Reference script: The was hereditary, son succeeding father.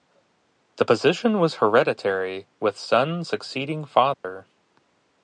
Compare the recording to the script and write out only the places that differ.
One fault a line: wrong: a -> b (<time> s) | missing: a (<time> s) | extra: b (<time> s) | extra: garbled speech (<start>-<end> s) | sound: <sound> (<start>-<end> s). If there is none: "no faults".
extra: position (0.8 s)
extra: with (2.6 s)
sound: dropout (4.1-4.2 s)